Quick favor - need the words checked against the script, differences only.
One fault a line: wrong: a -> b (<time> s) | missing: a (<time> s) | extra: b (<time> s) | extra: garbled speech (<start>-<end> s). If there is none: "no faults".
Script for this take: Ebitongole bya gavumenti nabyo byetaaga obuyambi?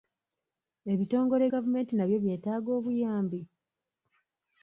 missing: bya (1.4 s)